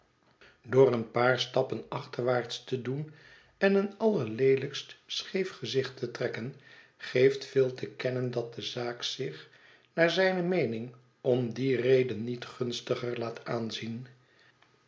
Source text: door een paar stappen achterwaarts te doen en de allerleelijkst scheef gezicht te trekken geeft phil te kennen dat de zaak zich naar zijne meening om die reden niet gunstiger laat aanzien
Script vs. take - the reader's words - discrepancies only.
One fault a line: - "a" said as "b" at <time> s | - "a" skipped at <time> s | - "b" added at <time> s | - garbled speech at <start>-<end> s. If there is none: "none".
- "de" said as "een" at 3.8 s